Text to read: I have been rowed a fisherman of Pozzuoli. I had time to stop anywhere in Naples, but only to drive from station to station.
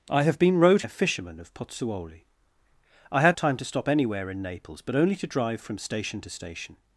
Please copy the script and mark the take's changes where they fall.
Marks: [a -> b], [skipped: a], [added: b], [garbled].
I have been rowed a fisherman of Pozzuoli. I had time to stop anywhere in Naples, but only to drive from station to station.